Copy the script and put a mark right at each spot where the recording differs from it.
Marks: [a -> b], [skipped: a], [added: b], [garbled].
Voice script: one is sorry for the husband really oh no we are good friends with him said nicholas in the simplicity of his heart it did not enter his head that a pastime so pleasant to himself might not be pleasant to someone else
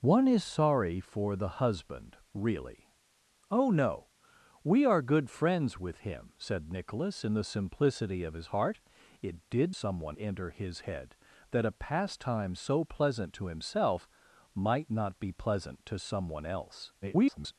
one is sorry for the husband really oh no we are good friends with him said nicholas in the simplicity of his heart it did [not -> someone] enter his head that a pastime so pleasant to himself might not be pleasant to someone else [garbled]